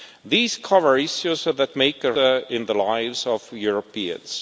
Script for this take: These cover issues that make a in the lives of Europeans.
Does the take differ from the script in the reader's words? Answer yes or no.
no